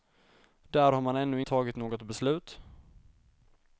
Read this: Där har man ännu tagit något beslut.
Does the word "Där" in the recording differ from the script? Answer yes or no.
no